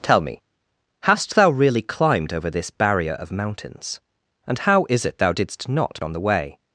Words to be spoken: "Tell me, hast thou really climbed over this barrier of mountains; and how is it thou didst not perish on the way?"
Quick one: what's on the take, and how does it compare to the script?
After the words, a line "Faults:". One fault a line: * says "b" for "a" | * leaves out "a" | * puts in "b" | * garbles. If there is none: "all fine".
"Tell me, hast thou really climbed over this barrier of mountains; and how is it thou didst not on the way?"
Faults:
* leaves out "perish"